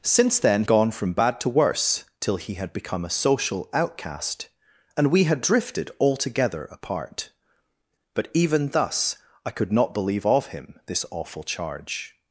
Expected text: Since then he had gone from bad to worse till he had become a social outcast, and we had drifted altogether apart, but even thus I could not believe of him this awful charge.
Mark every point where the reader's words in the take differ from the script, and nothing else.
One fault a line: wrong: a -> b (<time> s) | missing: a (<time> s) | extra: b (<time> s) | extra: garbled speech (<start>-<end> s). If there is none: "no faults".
missing: he had (0.6 s)